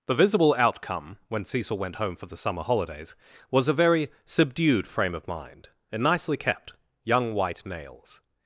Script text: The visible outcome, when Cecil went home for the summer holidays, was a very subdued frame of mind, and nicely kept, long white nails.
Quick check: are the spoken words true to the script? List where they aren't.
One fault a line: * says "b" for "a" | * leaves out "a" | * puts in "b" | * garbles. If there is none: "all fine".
* says "young" for "long"